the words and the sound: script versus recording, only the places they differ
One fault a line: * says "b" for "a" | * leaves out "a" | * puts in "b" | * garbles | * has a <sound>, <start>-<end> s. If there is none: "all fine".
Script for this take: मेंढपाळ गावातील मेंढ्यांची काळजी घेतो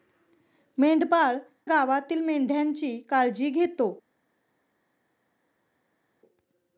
all fine